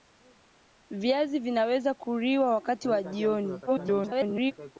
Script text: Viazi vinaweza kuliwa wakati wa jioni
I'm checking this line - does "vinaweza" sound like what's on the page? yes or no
yes